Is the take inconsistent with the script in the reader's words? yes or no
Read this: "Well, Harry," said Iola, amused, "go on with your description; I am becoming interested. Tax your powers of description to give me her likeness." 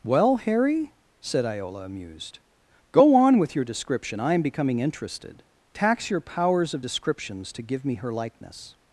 yes